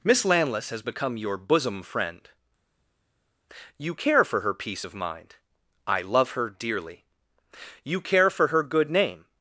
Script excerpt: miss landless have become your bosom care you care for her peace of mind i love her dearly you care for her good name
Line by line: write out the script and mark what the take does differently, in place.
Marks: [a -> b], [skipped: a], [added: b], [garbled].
miss landless [have -> has] become your bosom [care -> friend] you care for her peace of mind i love her dearly you care for her good name